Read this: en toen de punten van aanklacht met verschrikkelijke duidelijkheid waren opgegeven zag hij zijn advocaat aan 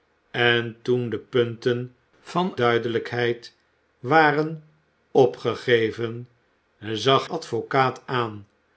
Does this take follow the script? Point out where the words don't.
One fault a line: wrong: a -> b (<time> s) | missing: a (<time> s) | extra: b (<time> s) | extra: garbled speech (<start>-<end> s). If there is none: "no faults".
missing: aanklacht met verschrikkelijke (2.5 s)
missing: hij zijn (7.3 s)